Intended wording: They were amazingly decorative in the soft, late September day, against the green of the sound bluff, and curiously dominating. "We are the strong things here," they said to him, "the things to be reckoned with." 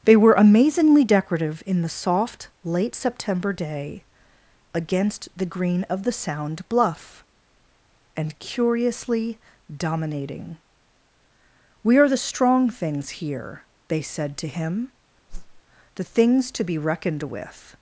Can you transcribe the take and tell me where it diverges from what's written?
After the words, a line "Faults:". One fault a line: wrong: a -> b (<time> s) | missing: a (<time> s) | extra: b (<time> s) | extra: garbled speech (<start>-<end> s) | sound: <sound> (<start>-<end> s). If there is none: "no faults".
They were amazingly decorative in the soft, late September day, against the green of the sound bluff, and curiously dominating. "We are the strong things here," they said to him, "the things to be reckoned with."
Faults:
sound: whoosh (15.3-15.6 s)